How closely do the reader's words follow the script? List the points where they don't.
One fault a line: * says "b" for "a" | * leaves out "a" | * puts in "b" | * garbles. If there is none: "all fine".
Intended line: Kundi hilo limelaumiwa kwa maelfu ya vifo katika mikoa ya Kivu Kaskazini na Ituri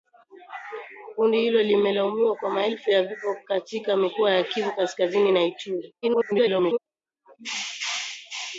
* garbles